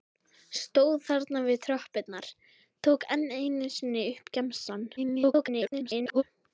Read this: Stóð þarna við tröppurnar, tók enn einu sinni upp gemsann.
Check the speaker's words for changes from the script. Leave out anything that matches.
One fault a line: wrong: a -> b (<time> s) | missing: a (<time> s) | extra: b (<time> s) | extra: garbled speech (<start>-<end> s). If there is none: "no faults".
extra: garbled speech (5.0-6.2 s)